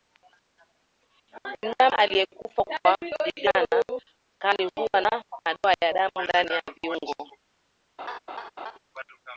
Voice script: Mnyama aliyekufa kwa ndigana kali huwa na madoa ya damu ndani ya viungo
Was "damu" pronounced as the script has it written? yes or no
yes